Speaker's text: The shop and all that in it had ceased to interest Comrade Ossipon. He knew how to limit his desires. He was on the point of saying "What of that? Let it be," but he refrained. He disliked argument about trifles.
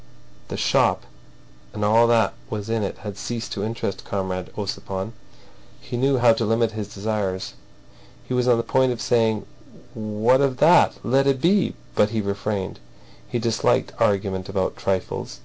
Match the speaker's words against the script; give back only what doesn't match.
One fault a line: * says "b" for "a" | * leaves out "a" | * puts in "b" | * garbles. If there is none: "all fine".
* puts in "was"